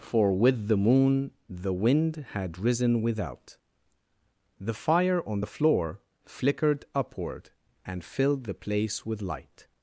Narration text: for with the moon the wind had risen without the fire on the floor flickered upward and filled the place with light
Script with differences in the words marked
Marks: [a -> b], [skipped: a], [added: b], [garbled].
for with the moon the wind had risen without the fire on the floor flickered upward and filled the place with light